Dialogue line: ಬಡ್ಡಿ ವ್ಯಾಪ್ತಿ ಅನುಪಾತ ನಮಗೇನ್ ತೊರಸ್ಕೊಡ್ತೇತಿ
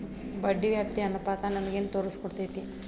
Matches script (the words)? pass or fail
pass